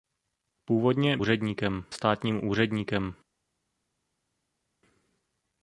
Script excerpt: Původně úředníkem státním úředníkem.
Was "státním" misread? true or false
false